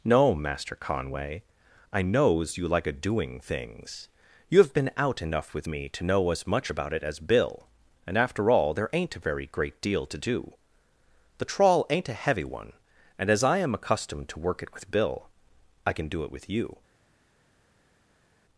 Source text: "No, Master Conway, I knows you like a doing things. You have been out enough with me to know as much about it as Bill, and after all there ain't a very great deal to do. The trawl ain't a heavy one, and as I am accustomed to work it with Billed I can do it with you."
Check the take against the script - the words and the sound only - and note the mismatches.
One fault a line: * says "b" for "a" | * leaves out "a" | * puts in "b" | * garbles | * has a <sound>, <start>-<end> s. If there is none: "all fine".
* says "Bill" for "Billed"